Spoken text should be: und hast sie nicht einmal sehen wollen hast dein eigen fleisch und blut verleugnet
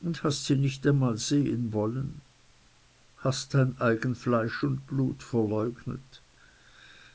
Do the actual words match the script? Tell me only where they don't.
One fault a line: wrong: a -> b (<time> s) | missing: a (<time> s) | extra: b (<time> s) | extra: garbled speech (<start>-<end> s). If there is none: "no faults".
no faults